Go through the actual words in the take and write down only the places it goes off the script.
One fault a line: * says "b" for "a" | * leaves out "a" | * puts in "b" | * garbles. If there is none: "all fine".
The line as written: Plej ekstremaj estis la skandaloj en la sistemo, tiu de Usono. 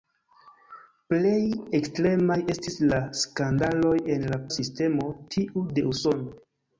all fine